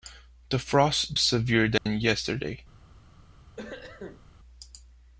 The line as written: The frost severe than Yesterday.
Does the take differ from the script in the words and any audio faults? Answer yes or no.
yes